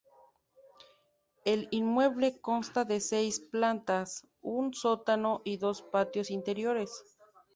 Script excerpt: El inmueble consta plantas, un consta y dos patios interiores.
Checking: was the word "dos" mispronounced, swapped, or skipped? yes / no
no